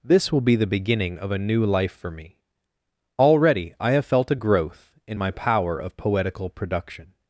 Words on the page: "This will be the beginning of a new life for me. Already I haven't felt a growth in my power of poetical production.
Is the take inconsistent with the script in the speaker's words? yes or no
yes